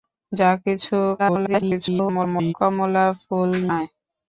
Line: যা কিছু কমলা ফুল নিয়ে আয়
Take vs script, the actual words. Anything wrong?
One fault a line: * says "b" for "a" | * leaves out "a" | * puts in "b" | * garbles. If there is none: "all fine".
* garbles
* leaves out "নিয়ে"